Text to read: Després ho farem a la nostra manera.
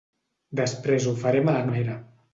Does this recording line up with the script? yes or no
no